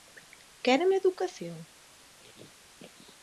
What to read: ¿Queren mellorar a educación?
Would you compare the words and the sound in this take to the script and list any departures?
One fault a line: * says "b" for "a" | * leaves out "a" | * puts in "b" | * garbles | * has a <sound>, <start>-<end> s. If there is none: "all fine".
* leaves out "mellorar"